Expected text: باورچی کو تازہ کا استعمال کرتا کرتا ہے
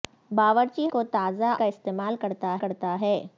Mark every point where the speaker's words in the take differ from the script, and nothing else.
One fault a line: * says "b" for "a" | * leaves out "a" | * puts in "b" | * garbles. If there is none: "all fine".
all fine